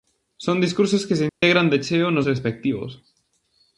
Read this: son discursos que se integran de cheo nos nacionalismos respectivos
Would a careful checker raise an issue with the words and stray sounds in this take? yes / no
yes